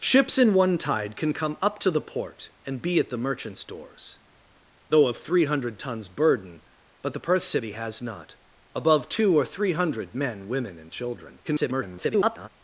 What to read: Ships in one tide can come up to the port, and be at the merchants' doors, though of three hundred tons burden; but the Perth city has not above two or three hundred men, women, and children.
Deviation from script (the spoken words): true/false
true